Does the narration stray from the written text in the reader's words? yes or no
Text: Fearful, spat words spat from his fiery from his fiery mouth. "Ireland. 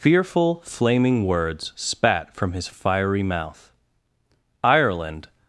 yes